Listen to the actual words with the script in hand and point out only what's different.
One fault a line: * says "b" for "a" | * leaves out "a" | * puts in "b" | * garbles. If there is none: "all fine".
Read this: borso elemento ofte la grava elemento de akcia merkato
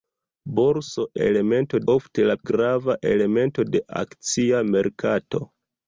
all fine